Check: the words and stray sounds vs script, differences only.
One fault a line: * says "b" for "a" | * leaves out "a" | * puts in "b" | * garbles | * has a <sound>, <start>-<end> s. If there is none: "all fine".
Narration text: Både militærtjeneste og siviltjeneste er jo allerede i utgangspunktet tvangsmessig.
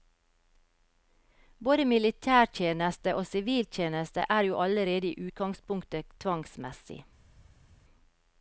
all fine